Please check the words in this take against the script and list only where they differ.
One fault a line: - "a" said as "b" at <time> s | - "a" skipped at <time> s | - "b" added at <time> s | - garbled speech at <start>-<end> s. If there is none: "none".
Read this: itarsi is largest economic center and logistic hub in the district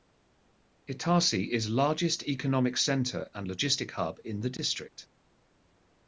none